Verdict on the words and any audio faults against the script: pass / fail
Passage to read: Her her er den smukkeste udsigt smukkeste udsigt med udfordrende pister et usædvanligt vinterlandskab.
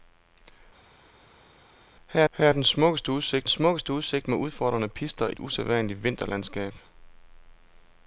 pass